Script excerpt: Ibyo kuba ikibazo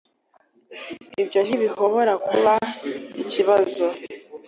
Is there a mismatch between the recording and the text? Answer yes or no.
yes